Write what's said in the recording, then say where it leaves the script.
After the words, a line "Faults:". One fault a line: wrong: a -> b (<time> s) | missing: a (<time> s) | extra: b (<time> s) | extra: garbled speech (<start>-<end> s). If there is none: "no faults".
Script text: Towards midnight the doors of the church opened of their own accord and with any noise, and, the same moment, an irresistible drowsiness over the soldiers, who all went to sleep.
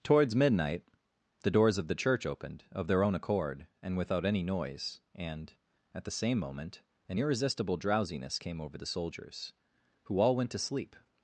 Towards midnight the doors of the church opened of their own accord and without any noise, and, at the same moment, an irresistible drowsiness came over the soldiers, who all went to sleep.
Faults:
wrong: with -> without (4.0 s)
extra: at (5.9 s)
extra: came (8.4 s)